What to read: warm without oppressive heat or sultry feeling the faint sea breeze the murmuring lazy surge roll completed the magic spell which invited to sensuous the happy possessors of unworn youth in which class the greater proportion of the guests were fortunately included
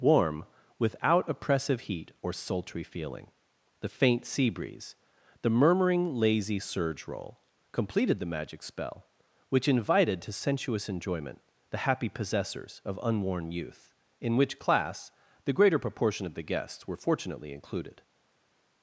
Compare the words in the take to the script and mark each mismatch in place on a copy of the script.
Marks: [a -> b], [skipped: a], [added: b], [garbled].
warm without oppressive heat or sultry feeling the faint sea breeze the murmuring lazy surge roll completed the magic spell which invited to sensuous [added: enjoyment] the happy possessors of unworn youth in which class the greater proportion of the guests were fortunately included